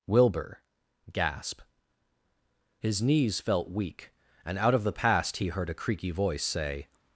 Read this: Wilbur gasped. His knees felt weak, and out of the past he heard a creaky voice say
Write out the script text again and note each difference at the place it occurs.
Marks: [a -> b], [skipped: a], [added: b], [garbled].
Wilbur [gasped. -> gasp] His knees felt weak, and out of the past he heard a creaky voice say